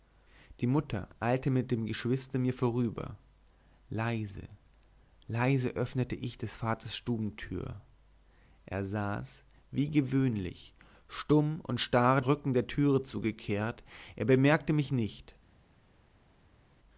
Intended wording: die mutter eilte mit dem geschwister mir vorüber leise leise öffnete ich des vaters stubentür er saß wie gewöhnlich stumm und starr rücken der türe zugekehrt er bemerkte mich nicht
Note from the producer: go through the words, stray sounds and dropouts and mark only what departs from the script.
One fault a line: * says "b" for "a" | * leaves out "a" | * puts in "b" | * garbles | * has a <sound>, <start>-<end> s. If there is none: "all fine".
all fine